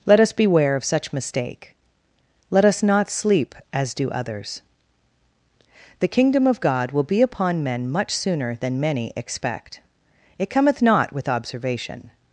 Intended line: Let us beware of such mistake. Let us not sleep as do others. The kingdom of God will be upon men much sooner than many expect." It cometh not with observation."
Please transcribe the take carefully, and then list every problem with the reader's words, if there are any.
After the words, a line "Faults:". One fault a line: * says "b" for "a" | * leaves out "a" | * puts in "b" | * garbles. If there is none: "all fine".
Let us beware of such mistake. Let us not sleep as do others. The kingdom of God will be upon men much sooner than many expect." It cometh not with observation."
Faults:
all fine